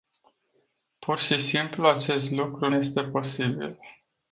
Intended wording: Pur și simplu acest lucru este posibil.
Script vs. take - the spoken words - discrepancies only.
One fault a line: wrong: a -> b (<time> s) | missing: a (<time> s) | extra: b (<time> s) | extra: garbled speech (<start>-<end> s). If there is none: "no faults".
no faults